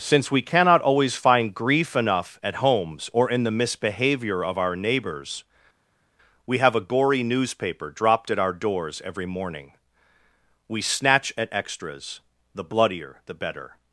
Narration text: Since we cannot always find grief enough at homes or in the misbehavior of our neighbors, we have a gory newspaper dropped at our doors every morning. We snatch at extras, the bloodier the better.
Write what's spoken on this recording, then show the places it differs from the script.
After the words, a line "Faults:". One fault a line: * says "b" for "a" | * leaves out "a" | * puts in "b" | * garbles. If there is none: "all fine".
Since we cannot always find grief enough at homes or in the misbehavior of our neighbors, we have a gory newspaper dropped at our doors every morning. We snatch at extras, the bloodier the better.
Faults:
all fine